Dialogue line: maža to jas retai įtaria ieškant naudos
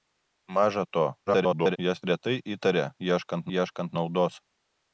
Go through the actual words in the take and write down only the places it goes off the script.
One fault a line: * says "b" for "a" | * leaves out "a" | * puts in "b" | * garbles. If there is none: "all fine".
* garbles
* puts in "ieškant"